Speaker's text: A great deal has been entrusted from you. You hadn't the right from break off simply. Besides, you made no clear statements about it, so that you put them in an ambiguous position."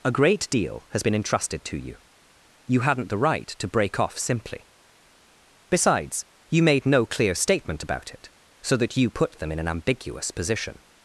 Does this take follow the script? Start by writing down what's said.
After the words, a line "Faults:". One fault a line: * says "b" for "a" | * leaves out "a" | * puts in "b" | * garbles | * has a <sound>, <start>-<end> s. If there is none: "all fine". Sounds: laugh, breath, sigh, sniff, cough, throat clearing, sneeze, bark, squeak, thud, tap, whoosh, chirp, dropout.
A great deal has been entrusted to you. You hadn't the right to break off simply. Besides, you made no clear statement about it, so that you put them in an ambiguous position."
Faults:
* says "to" for "from"
* says "to" for "from"
* says "statement" for "statements"